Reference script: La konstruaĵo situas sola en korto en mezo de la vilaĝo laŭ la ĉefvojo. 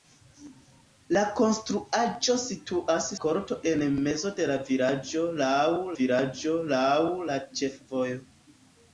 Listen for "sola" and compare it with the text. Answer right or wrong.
wrong